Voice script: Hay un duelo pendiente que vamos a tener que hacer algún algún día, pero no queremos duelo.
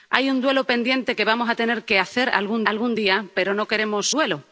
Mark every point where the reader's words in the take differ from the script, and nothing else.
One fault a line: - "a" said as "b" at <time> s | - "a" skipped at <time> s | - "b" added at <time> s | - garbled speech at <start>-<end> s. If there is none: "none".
none